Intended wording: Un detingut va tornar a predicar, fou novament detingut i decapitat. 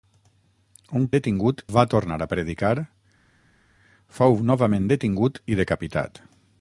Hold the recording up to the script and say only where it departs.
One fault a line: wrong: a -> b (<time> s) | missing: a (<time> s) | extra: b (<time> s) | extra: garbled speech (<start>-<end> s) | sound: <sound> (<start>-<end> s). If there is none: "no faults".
no faults